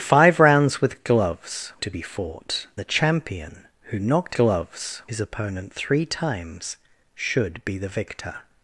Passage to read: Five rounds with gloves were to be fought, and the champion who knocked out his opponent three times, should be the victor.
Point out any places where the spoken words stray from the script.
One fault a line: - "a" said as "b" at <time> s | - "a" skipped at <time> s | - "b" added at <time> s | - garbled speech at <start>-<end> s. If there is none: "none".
- "were" skipped at 1.7 s
- "and" skipped at 2.7 s
- "out" said as "gloves" at 4.3 s